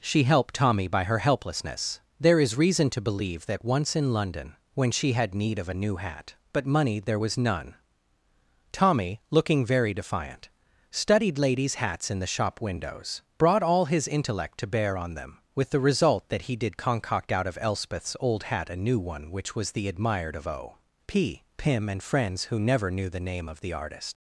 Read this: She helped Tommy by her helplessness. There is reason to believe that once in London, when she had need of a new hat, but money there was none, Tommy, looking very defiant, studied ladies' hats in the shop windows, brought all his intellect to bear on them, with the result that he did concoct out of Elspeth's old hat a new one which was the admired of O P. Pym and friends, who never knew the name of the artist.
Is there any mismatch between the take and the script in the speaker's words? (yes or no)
no